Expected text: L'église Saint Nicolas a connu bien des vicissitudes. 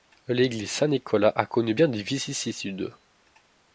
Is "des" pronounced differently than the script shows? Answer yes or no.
no